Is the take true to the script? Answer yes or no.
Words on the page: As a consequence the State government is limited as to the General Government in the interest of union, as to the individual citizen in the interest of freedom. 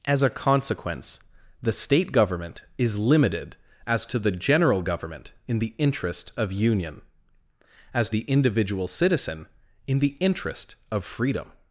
no